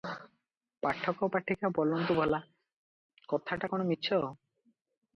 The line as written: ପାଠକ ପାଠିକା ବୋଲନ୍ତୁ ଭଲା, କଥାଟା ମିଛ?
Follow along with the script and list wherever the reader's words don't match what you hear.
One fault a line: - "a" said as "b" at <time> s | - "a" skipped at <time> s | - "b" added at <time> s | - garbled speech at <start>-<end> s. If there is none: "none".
- "କଣ" added at 3.7 s